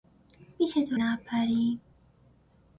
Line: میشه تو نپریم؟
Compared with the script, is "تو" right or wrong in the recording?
right